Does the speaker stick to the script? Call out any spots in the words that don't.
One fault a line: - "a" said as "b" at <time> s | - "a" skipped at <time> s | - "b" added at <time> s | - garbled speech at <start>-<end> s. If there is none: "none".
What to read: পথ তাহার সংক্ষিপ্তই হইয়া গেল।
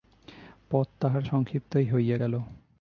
none